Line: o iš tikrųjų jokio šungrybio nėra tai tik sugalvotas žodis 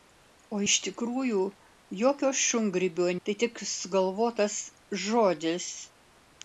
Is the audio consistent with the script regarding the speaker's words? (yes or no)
no